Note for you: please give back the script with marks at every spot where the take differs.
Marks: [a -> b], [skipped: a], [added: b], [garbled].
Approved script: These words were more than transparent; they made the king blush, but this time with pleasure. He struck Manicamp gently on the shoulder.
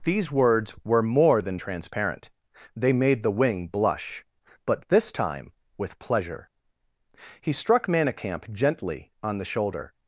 These words were more than transparent; they made the [king -> wing] blush, but this time with pleasure. He struck Manicamp gently on the shoulder.